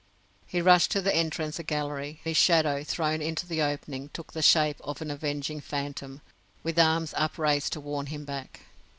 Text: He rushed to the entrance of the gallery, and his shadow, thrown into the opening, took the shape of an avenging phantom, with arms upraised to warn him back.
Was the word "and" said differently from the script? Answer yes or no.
yes